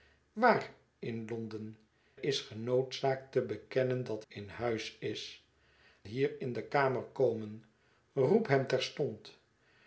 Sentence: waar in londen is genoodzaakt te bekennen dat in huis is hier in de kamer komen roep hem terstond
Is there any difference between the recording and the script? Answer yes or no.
no